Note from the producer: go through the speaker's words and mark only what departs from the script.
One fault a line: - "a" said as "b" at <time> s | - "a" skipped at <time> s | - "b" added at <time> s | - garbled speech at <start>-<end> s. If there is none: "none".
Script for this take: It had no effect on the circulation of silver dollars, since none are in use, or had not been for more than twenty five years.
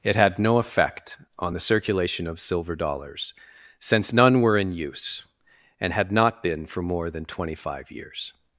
- "are" said as "were" at 4.4 s
- "or" said as "and" at 5.8 s